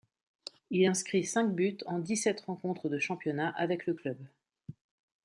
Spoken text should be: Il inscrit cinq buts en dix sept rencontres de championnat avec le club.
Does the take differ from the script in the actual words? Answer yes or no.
no